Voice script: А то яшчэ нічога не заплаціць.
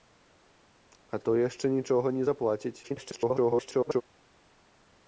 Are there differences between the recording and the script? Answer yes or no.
yes